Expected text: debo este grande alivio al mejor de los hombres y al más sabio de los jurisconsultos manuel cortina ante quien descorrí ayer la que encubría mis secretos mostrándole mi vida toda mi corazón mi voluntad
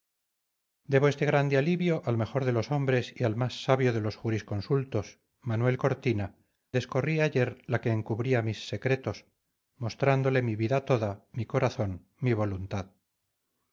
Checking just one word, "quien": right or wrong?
wrong